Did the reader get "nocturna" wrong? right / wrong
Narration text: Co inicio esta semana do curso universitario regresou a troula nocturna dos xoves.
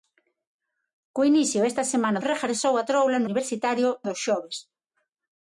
wrong